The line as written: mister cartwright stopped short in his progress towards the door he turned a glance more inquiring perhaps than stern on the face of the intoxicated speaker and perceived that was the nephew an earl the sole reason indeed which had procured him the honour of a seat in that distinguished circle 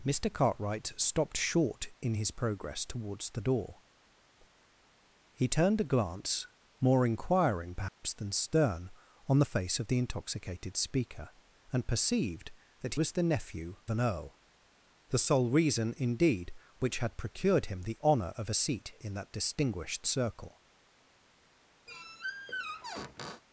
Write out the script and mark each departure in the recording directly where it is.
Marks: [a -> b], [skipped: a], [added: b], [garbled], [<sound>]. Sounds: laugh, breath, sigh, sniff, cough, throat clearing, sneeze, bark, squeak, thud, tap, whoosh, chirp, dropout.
mister cartwright stopped short in his progress towards the door he turned a glance more inquiring perhaps [dropout] than stern on the face of the intoxicated speaker and perceived that was the nephew an earl the sole reason indeed which had procured him the honour of a seat in that distinguished circle [squeak]